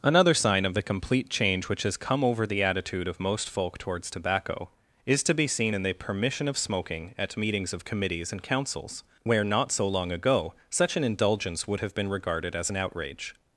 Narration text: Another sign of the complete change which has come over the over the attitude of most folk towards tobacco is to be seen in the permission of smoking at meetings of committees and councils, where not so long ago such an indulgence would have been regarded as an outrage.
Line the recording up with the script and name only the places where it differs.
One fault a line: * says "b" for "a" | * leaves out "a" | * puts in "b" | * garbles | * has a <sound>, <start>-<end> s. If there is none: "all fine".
* leaves out "over the"